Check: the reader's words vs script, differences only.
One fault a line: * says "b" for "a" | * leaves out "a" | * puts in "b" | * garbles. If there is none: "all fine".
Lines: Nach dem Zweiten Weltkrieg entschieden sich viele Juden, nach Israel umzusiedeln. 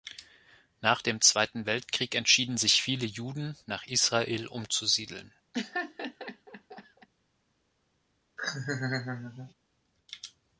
all fine